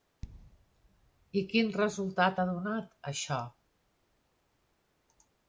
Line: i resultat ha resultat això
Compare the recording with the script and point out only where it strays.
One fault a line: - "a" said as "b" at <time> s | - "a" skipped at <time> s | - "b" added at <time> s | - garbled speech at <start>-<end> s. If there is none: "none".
- "quin" added at 1.5 s
- "resultat" said as "donat" at 2.5 s